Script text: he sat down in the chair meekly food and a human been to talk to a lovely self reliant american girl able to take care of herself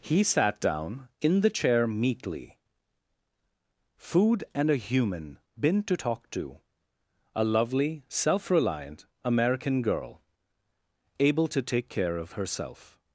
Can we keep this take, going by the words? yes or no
yes